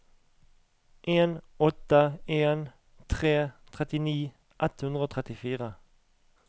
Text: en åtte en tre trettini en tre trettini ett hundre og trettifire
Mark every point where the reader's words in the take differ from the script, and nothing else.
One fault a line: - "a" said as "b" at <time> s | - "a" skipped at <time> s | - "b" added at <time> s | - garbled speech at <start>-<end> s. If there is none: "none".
- "en tre trettini" skipped at 4.2 s